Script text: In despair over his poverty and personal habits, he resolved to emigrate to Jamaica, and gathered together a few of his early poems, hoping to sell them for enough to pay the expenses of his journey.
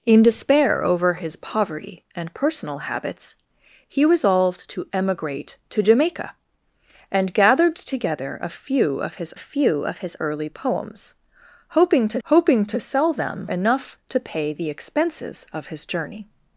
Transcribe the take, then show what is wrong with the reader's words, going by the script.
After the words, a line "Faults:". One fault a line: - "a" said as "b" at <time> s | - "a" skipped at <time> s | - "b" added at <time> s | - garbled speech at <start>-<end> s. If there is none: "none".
In despair over his poverty and personal habits, he resolved to emigrate to Jamaica, and gathered together a few of his few of his early poems, hoping to hoping to sell them enough to pay the expenses of his journey.
Faults:
- "few of his" added at 9.4 s
- "hoping to" added at 12.2 s
- "for" skipped at 13.5 s